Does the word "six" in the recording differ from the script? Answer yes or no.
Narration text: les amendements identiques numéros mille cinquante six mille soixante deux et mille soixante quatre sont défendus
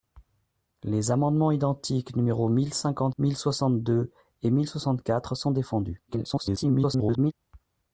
yes